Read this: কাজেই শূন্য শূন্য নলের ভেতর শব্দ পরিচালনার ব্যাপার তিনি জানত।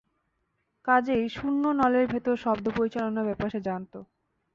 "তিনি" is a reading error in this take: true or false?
true